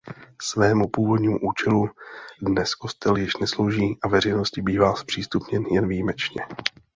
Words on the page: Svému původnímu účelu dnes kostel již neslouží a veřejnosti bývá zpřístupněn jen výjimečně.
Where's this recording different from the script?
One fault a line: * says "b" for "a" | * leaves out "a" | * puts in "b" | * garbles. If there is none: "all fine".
all fine